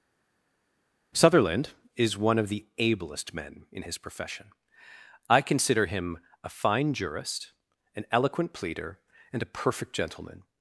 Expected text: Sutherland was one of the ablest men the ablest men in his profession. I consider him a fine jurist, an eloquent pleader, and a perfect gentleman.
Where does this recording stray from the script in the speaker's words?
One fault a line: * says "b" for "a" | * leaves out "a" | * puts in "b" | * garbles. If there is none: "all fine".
* says "is" for "was"
* leaves out "the ablest men"